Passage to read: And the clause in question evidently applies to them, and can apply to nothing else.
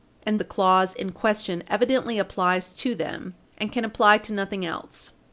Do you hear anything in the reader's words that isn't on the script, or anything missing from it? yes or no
no